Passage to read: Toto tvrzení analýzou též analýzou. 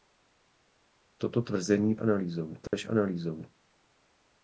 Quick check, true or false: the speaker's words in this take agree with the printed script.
true